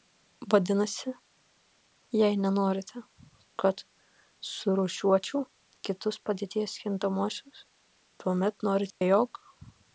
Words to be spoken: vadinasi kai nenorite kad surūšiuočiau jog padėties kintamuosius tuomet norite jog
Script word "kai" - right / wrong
wrong